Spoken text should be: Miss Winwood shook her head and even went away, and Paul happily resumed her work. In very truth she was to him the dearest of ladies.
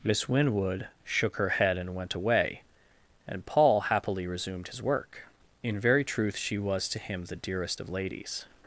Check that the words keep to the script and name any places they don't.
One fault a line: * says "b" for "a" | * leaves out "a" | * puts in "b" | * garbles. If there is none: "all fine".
* leaves out "even"
* says "his" for "her"